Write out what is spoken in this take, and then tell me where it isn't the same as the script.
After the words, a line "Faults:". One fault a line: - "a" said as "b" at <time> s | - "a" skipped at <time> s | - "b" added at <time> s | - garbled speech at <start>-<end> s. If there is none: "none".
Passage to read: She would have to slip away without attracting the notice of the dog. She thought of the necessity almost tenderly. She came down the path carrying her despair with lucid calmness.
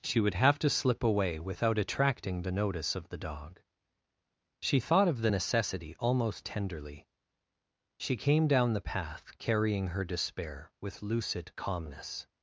She would have to slip away without attracting the notice of the dog. She thought of the necessity almost tenderly. She came down the path carrying her despair with lucid calmness.
Faults:
none